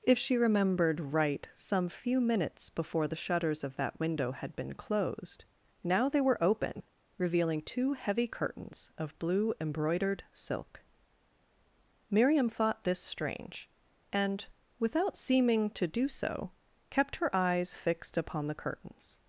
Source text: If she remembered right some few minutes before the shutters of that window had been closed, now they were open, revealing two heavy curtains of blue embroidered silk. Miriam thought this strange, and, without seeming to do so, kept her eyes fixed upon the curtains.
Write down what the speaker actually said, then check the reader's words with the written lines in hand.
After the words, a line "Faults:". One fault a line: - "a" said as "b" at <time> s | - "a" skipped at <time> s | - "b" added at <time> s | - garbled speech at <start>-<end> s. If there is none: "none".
If she remembered right some few minutes before the shutters of that window had been closed, now they were open, revealing two heavy curtains of blue embroidered silk. Miriam thought this strange, and, without seeming to do so, kept her eyes fixed upon the curtains.
Faults:
none